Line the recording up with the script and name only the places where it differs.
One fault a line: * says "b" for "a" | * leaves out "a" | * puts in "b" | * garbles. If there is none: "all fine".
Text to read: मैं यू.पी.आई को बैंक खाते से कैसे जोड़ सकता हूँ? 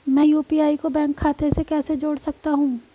all fine